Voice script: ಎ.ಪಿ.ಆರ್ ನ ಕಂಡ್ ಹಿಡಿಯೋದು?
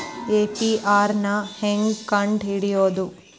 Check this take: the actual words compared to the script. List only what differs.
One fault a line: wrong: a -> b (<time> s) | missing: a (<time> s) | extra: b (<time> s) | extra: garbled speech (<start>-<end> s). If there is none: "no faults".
extra: ಹೆಂಗ್ (1.6 s)